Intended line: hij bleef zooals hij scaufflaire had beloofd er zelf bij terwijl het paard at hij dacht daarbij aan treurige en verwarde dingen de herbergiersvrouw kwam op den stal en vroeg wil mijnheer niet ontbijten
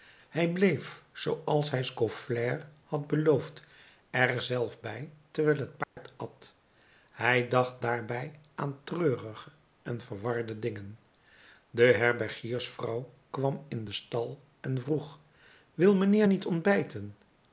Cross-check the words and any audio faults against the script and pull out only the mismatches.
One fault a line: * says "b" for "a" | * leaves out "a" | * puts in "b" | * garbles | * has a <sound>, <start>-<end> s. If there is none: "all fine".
* has a dropout, 5.8-6.0 s
* says "in" for "op"